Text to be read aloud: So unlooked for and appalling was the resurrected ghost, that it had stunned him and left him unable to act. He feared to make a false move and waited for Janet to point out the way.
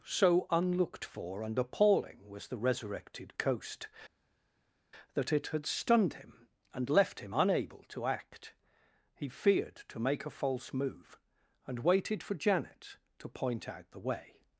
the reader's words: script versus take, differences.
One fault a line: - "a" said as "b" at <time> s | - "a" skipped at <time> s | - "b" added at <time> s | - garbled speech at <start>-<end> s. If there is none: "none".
- "ghost" said as "coast" at 3.4 s